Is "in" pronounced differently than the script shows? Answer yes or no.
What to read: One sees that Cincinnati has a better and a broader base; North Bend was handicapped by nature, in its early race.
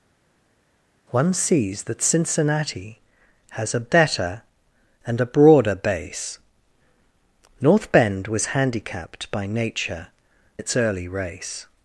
yes